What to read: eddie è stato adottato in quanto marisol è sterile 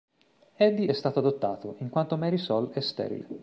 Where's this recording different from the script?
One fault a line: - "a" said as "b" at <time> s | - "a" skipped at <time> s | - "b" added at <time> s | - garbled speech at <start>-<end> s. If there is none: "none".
none